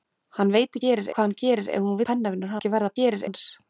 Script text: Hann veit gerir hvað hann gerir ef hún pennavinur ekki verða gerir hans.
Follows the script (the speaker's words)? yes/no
yes